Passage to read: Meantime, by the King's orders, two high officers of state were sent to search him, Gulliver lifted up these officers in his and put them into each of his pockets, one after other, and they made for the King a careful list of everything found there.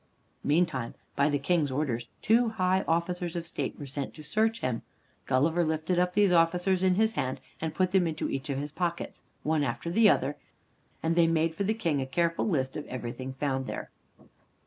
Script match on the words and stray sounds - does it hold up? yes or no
no